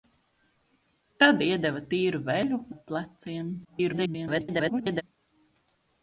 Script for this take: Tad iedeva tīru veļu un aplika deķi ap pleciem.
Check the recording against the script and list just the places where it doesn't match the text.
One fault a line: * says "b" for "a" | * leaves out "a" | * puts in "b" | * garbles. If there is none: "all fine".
* leaves out "un aplika deķi"
* garbles